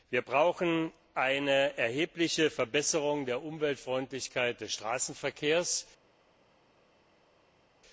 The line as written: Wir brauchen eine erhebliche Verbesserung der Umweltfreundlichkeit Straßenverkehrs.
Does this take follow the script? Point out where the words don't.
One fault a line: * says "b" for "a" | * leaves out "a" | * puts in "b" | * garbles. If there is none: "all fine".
* puts in "des"